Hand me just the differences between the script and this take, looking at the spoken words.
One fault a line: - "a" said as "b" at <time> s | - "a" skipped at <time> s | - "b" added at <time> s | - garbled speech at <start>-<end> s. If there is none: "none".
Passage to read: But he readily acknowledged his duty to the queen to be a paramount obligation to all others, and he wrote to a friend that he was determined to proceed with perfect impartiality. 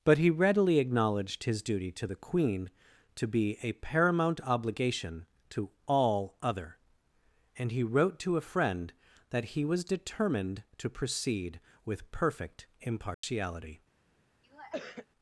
- "others" said as "other" at 6.4 s